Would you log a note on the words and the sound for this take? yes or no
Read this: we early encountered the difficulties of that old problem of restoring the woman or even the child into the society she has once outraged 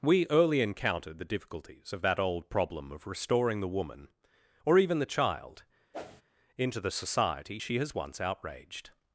yes